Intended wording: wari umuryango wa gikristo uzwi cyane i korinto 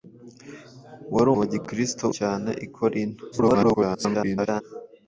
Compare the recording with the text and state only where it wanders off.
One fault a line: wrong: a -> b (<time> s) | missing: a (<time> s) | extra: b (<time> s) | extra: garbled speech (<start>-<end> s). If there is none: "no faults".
missing: umuryango (1.3 s)
missing: uzwi (2.0 s)
extra: garbled speech (3.3-4.6 s)